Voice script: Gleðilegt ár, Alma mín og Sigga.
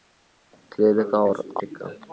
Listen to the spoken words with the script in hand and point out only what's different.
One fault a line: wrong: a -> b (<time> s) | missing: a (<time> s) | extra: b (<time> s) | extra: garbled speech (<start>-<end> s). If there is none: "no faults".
missing: Alma mín og (1.4 s)